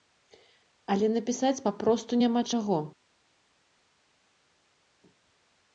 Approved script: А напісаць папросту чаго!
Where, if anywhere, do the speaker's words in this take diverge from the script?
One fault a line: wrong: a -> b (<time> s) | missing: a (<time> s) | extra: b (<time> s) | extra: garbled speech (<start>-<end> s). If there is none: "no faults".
wrong: А -> Але (0.9 s)
extra: няма (2.2 s)